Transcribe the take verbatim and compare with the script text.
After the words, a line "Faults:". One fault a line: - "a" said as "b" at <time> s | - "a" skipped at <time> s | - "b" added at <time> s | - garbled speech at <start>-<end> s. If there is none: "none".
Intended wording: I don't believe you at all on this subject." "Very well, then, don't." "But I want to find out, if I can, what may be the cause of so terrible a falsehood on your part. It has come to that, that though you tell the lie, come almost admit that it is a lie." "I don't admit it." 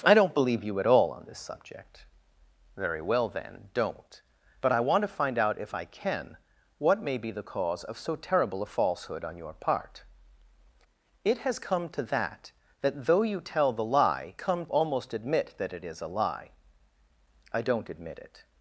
I don't believe you at all on this subject." "Very well, then, don't." "But I want to find out, if I can, what may be the cause of so terrible a falsehood on your part. It has come to that, that though you tell the lie, come almost admit that it is a lie." "I don't admit it."
Faults:
none